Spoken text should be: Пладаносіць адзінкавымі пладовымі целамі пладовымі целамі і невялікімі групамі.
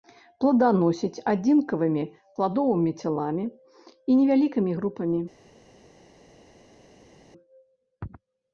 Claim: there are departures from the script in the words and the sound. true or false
true